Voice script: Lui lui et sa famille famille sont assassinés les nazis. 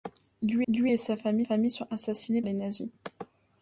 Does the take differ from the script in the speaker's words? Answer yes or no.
no